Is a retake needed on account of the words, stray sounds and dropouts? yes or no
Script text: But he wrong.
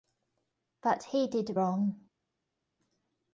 yes